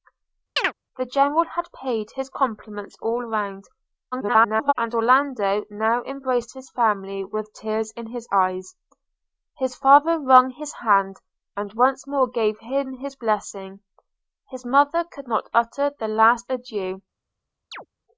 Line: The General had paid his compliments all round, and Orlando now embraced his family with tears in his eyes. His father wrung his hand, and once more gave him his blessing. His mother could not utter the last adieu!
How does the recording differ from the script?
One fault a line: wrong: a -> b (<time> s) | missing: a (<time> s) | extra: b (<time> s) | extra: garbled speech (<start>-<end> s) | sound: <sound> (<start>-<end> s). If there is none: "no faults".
sound: chirp (0.6-0.7 s)
extra: garbled speech (4.1-4.7 s)
sound: chirp (17.7-17.9 s)